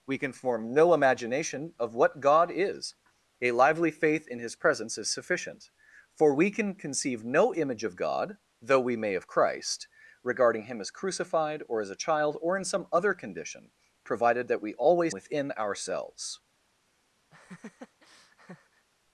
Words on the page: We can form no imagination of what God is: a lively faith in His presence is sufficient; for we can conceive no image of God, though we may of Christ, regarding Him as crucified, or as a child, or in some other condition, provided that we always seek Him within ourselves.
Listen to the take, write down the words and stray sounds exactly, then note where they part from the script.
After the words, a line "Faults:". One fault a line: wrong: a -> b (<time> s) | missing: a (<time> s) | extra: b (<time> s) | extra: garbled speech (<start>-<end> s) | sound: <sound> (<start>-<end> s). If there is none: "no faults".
We can form no imagination of what God is: a lively faith in His presence is sufficient; for we can conceive no image of God, though we may of Christ, regarding Him as crucified, or as a child, or in some other condition, provided that we always within ourselves.
Faults:
missing: seek Him (15.2 s)
sound: laugh (17.3-18.9 s)